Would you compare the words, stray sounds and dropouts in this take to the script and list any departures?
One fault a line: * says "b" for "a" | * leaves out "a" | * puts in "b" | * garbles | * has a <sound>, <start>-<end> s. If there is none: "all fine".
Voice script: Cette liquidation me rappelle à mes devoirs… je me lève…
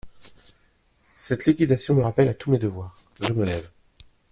* puts in "tous"